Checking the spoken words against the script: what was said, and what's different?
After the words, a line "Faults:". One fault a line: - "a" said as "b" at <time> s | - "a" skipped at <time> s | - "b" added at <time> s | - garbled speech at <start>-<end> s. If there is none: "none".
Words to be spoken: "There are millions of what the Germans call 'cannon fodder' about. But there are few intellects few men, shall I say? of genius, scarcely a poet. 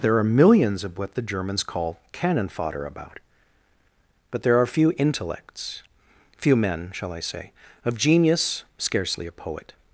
"There are millions of what the Germans call 'cannon fodder' about. But there are few intellects few men, shall I say? of genius, scarcely a poet.
Faults:
none